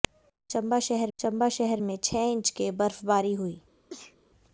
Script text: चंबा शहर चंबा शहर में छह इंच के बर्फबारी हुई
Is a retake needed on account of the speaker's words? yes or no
no